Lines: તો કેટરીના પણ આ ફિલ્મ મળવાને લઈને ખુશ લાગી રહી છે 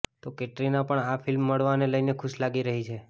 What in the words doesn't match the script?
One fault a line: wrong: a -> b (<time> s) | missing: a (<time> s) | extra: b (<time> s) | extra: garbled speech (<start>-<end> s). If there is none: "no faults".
no faults